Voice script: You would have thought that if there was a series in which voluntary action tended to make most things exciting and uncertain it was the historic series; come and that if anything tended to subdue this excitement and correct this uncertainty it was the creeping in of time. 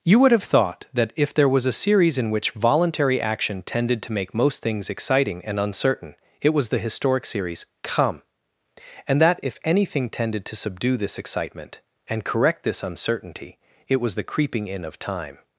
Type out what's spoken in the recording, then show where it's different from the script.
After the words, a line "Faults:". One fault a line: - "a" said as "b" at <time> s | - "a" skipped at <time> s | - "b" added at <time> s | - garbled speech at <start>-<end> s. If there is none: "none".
You would have thought that if there was a series in which voluntary action tended to make most things exciting and uncertain it was the historic series; come and that if anything tended to subdue this excitement and correct this uncertainty it was the creeping in of time.
Faults:
none